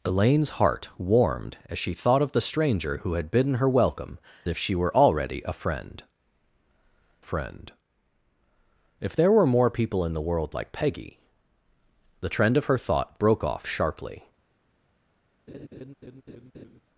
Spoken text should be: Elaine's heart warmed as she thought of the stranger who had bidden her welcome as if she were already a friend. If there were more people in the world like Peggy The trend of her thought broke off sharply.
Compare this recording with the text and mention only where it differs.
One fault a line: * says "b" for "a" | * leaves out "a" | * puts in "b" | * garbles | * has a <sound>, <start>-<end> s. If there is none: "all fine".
* leaves out "as"
* puts in "friend"
* has a laugh, 15.5-16.8 s